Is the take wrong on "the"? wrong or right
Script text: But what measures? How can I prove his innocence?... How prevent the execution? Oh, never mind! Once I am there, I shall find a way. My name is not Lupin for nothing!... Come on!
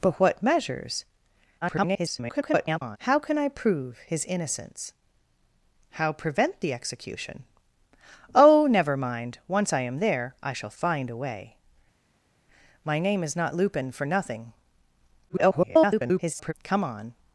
right